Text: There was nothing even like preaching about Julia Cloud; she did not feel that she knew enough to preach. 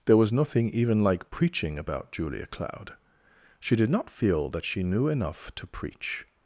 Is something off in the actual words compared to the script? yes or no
no